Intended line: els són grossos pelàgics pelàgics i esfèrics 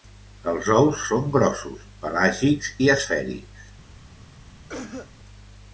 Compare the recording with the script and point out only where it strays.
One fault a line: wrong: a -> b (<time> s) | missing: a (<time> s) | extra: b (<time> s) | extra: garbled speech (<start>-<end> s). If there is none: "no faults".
extra: ous (0.8 s)
missing: pelàgics (2.8 s)